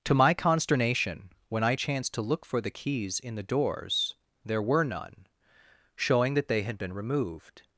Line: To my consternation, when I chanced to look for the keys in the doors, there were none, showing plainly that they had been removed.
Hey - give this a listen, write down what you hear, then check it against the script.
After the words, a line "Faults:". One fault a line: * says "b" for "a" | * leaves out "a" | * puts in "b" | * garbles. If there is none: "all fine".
To my consternation, when I chanced to look for the keys in the doors, there were none, showing that they had been removed.
Faults:
* leaves out "plainly"